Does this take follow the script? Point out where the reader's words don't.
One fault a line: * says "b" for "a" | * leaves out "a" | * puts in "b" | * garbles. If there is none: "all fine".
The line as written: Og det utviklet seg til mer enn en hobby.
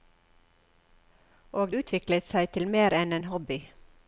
* leaves out "det"